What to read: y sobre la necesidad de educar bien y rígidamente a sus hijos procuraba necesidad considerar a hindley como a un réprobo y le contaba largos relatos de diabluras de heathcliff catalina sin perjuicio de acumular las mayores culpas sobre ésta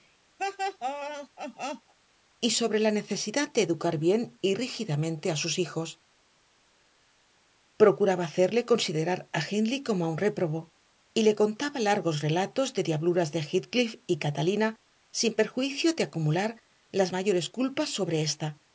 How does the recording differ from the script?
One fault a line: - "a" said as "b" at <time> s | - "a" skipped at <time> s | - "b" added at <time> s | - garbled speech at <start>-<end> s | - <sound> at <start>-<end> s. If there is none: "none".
- laugh at 0.4-1.9 s
- "necesidad" said as "hacerle" at 8.2 s
- "y" added at 14.1 s